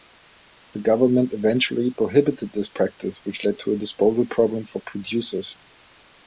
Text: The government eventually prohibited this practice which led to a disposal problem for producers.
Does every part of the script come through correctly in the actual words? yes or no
yes